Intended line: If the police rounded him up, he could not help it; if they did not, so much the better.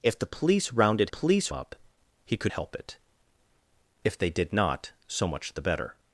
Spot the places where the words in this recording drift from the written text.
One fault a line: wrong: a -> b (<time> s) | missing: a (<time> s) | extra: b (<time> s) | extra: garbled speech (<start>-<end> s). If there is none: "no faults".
wrong: him -> police (1.1 s)
missing: not (2.5 s)